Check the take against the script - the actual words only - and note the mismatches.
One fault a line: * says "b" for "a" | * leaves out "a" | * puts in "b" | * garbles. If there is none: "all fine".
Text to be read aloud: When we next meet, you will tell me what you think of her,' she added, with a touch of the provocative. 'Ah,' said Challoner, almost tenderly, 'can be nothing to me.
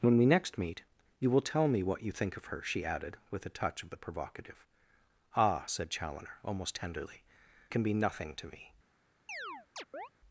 all fine